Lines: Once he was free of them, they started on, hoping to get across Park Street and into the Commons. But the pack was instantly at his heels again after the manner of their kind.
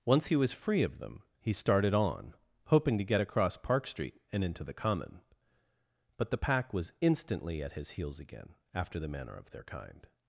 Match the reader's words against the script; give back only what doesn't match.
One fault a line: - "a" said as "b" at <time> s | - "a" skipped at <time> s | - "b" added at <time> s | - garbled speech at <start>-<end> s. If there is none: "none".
- "they" said as "he" at 1.4 s
- "Commons" said as "Common" at 4.7 s